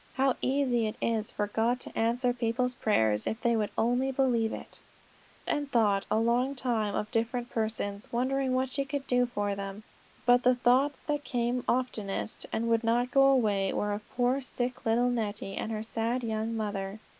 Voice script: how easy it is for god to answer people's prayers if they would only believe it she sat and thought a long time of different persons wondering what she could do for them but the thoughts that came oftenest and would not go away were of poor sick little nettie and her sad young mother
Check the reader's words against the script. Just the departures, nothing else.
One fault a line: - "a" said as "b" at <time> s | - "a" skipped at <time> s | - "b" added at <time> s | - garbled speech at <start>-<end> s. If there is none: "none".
- "she sat" skipped at 4.8 s